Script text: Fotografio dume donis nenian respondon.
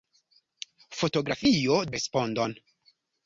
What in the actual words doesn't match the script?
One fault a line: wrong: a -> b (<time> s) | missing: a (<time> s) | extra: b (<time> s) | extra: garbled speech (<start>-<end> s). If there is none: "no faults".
missing: dume donis nenian (1.8 s)